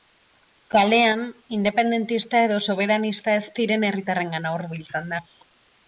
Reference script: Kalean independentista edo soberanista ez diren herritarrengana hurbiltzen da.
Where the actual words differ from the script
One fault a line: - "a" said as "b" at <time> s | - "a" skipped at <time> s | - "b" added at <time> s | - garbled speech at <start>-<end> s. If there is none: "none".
none